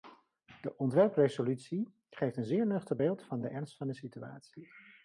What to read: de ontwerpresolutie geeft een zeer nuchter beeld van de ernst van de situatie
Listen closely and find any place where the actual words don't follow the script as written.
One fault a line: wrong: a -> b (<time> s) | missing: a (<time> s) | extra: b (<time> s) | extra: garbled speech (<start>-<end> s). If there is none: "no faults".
no faults